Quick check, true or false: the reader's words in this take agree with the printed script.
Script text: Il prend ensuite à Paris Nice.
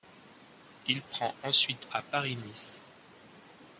true